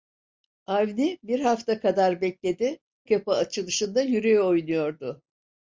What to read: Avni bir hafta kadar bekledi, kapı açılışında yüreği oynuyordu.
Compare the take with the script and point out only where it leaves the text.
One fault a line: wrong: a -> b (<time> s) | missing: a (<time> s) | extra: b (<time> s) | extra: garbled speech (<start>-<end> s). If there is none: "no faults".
no faults